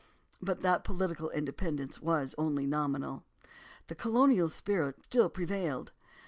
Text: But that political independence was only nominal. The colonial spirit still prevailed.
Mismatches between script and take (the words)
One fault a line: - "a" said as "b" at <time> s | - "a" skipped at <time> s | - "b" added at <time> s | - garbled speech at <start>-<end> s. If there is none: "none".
none